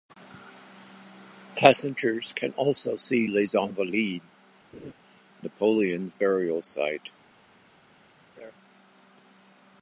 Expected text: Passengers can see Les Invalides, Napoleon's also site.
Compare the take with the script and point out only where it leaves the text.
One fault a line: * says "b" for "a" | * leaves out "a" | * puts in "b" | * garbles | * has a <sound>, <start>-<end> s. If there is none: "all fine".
* puts in "also"
* has a laugh, 4.7-4.9 s
* says "burial" for "also"
* has a laugh, 8.4-8.5 s